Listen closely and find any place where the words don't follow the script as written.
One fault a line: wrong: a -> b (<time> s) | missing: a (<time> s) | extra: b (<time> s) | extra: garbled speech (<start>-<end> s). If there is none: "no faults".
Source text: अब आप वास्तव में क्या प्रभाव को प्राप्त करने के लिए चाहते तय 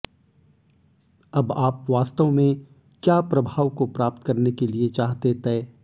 no faults